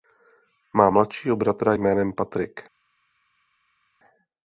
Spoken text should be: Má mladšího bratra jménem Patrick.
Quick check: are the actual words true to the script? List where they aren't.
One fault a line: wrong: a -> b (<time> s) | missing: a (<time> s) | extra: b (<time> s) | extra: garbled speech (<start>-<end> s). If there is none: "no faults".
no faults